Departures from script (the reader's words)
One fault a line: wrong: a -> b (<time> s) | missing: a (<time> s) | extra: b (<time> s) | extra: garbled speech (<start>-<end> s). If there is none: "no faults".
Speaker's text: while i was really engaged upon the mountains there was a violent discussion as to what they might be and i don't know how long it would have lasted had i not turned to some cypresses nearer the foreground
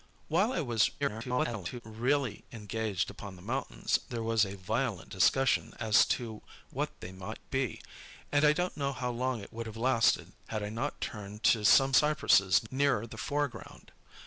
extra: garbled speech (1.0-1.8 s)